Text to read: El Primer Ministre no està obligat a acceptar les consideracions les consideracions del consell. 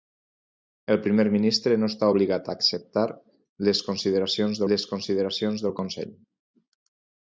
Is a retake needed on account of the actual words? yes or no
no